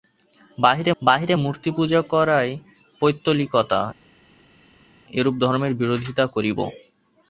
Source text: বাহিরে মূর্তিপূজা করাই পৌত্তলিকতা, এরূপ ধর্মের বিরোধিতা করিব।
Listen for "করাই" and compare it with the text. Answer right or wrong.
right